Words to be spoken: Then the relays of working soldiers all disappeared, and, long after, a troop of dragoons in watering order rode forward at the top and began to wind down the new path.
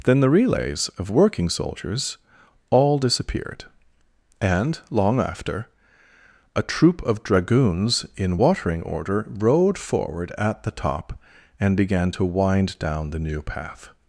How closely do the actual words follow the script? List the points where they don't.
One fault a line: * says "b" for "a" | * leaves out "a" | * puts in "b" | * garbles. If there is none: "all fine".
all fine